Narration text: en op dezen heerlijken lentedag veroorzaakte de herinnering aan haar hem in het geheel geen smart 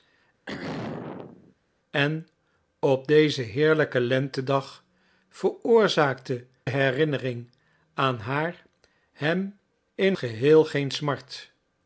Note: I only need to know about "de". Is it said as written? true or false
false